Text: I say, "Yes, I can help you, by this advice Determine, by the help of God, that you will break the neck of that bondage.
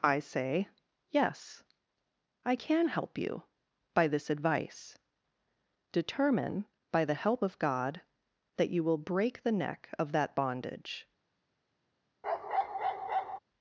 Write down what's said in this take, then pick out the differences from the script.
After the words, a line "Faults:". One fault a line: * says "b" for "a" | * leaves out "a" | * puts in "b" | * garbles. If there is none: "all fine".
I say, "Yes, I can help you, by this advice Determine, by the help of God, that you will break the neck of that bondage.
Faults:
all fine